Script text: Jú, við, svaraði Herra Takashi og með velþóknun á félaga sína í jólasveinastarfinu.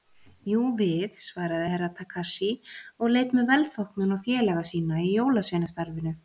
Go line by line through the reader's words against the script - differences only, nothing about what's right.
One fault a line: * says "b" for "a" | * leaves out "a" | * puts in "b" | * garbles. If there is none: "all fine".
* puts in "leit"